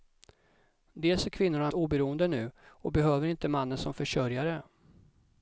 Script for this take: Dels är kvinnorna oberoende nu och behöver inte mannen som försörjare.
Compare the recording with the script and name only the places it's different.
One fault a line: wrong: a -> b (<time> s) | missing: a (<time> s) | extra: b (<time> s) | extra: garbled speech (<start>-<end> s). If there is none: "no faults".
no faults